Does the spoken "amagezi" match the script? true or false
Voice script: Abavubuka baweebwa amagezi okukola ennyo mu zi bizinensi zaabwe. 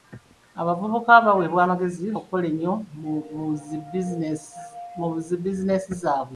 true